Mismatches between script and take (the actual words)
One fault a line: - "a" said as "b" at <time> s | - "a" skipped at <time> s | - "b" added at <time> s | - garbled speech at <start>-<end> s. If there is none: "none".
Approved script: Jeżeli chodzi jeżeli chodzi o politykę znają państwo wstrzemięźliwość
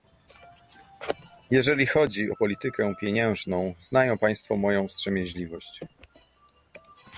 - "jeżeli chodzi" skipped at 2.3 s
- "pieniężną" added at 3.0 s
- "moją" added at 4.6 s